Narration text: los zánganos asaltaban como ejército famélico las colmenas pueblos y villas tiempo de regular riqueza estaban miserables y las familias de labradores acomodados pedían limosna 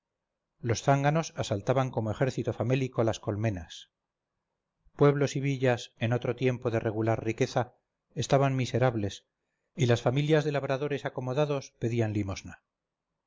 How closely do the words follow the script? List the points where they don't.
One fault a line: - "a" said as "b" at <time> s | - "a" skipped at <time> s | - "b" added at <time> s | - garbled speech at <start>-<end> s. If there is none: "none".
- "en otro" added at 6.0 s